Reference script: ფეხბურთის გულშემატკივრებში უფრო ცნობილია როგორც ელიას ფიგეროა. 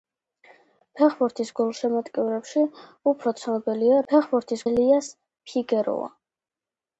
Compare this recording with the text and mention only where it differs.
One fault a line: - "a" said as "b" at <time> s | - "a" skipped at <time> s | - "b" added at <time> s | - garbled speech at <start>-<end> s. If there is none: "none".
- "როგორც" said as "ფეხბურთის" at 4.1 s